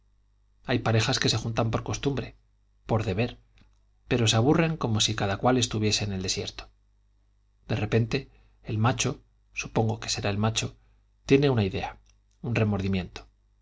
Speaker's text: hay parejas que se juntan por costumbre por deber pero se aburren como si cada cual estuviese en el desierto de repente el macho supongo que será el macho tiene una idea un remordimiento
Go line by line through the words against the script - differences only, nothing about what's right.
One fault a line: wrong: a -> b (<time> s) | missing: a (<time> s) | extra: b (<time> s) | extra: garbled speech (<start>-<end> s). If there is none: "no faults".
no faults